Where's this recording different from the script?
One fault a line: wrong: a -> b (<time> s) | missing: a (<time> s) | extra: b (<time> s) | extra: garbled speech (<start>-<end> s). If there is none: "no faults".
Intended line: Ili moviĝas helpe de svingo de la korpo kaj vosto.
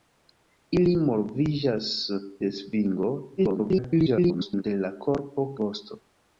missing: helpe (1.9 s)
extra: garbled speech (3.4-4.6 s)
missing: kaj (5.5 s)